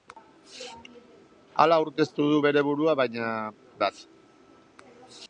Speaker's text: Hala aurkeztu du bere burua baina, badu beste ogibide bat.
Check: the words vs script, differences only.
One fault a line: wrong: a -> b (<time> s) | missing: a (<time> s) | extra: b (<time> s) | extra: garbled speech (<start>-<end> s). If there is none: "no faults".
missing: badu beste ogibide (3.3 s)